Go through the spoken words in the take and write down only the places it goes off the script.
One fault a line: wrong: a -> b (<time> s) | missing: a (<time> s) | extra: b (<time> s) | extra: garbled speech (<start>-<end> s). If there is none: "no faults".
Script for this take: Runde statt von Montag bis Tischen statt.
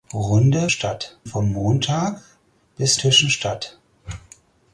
no faults